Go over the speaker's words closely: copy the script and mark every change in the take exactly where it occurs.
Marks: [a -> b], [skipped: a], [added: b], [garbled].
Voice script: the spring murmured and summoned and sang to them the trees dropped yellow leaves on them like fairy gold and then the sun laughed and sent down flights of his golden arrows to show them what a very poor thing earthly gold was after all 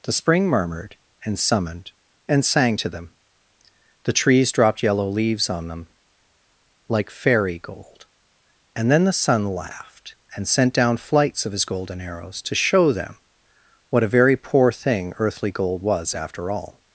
the spring murmured and summoned and sang to them the trees dropped yellow leaves on them like fairy gold and then the sun laughed and sent down flights of his golden arrows to show them what a very poor thing earthly gold was after all